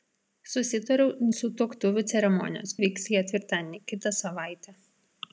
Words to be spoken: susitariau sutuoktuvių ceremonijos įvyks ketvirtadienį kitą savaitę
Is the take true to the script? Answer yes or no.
yes